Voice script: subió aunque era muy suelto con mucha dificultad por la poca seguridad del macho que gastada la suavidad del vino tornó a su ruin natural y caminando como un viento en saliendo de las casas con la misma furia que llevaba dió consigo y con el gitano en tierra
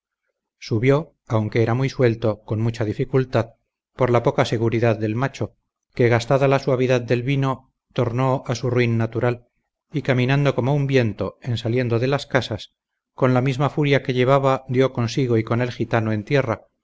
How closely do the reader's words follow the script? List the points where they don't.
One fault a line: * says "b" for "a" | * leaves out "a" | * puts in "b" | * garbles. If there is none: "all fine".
all fine